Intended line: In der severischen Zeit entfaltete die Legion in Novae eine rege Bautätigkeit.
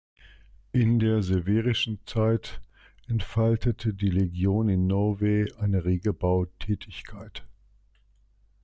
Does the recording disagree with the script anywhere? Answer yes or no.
no